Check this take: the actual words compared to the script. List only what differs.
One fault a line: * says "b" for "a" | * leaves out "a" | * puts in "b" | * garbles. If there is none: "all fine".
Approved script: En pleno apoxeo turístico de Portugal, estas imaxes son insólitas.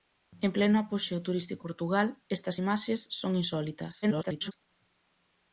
* leaves out "de"
* garbles